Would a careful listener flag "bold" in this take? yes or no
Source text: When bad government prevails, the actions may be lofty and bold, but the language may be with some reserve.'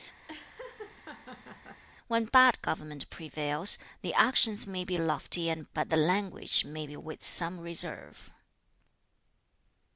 yes